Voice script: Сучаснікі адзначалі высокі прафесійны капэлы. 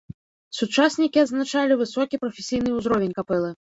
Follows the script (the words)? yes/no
no